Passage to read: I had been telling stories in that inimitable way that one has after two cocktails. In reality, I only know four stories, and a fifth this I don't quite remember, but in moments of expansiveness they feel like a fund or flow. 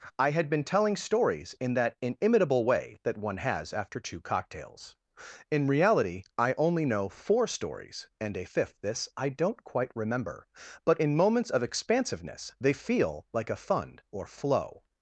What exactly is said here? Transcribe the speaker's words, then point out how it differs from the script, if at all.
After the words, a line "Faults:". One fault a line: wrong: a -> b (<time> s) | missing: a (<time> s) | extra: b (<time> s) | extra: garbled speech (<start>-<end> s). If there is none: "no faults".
I had been telling stories in that inimitable way that one has after two cocktails. In reality, I only know four stories, and a fifth this I don't quite remember, but in moments of expansiveness they feel like a fund or flow.
Faults:
no faults